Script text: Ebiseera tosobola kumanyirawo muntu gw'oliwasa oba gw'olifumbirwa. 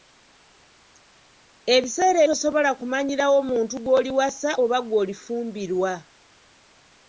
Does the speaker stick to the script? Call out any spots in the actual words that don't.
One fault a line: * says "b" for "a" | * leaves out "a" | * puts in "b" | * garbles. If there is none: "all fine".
all fine